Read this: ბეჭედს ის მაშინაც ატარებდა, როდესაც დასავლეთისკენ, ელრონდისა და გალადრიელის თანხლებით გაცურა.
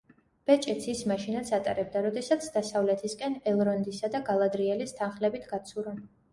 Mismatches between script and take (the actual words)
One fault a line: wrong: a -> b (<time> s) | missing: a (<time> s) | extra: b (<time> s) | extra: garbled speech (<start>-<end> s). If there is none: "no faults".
no faults